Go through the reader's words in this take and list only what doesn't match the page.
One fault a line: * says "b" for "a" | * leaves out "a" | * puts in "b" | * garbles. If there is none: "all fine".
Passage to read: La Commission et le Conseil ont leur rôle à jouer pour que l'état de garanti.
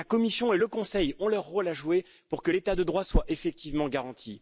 * puts in "droit soit effectivement"